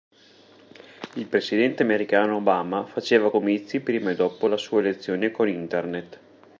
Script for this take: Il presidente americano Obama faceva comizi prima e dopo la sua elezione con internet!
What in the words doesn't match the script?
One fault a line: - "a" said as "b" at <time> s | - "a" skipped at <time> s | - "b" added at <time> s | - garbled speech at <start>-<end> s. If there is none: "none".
none